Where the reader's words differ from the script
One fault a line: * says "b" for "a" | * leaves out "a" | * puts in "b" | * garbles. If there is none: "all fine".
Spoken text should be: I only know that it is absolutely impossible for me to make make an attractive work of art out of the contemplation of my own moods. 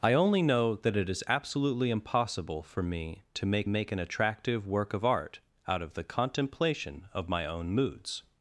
all fine